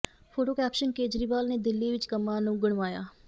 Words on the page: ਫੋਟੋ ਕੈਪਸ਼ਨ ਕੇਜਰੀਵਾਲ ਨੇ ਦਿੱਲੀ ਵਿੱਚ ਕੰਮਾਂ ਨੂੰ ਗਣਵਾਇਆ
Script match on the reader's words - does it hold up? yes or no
yes